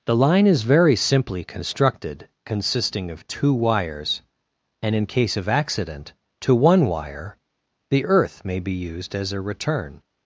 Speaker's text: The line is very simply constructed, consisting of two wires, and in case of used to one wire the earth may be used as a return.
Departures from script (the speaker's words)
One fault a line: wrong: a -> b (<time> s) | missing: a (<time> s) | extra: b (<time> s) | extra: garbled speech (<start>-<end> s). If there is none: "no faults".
wrong: used -> accident (5.5 s)